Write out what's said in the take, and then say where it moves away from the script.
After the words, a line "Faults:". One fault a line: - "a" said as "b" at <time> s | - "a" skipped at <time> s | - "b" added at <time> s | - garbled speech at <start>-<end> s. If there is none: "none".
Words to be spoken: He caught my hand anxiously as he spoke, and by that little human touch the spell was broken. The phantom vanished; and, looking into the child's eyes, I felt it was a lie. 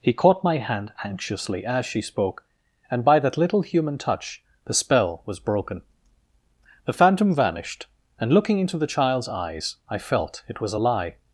He caught my hand anxiously as she spoke, and by that little human touch the spell was broken. The phantom vanished; and, looking into the child's eyes, I felt it was a lie.
Faults:
- "he" said as "she" at 1.9 s